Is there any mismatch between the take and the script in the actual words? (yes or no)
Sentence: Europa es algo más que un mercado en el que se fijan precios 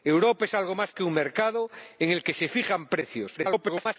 yes